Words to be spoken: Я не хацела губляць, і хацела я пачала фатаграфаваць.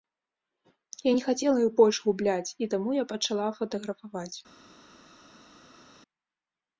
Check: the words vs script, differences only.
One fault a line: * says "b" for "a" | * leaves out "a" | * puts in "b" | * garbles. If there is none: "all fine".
* puts in "іх больш"
* says "таму" for "хацела"